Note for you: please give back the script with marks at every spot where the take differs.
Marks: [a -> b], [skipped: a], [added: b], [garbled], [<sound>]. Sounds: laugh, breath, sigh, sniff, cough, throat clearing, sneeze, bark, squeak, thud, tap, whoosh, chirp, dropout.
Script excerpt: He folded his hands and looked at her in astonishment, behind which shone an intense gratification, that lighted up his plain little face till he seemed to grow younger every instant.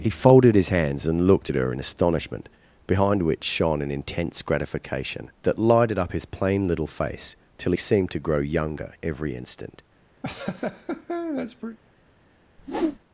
He folded his hands and looked at her in astonishment, behind which shone an intense gratification, that lighted up his plain little face till he seemed to grow younger every instant. [laugh] [whoosh]